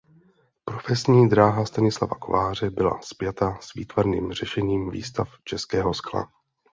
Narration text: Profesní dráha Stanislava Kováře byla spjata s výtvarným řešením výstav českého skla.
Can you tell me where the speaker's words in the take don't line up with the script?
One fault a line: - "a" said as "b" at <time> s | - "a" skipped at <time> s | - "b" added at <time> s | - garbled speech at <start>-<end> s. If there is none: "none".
none